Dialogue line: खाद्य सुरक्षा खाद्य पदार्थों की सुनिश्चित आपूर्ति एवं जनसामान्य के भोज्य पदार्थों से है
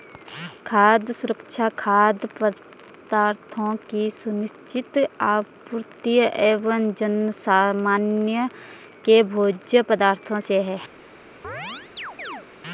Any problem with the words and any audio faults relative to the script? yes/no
yes